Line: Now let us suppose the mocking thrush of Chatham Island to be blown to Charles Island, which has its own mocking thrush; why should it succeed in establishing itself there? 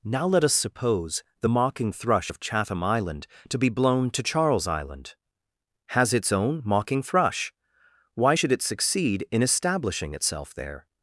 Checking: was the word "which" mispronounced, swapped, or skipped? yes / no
yes